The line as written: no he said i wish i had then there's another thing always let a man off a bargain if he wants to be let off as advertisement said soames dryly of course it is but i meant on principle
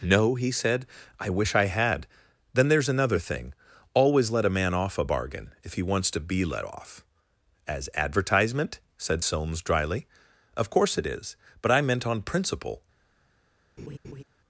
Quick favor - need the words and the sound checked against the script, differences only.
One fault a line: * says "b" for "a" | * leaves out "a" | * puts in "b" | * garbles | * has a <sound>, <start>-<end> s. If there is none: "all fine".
* has a laugh, 13.8-14.2 s